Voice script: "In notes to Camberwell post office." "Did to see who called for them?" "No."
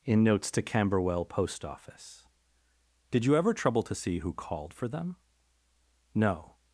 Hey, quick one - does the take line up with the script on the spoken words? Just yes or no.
no